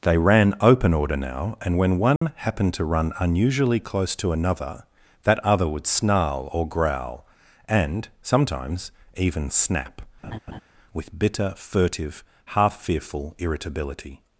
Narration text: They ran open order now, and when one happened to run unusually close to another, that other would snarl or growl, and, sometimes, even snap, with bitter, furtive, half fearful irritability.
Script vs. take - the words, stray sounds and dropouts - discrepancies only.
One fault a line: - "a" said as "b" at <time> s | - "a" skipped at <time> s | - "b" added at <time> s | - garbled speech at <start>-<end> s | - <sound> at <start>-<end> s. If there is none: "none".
- dropout at 2.2-2.2 s
- laugh at 10.2-10.6 s